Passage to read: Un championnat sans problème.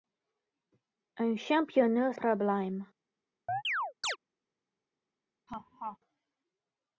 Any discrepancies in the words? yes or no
yes